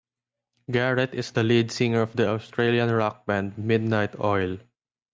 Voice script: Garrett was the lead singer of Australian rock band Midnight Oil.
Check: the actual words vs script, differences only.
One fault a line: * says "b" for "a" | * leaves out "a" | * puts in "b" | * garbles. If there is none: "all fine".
* says "is" for "was"
* puts in "the"